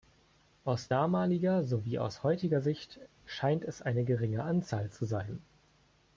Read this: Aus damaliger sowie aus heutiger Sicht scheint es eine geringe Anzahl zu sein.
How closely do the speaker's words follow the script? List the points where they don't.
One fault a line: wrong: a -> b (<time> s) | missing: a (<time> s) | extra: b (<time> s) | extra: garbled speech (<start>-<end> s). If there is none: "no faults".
no faults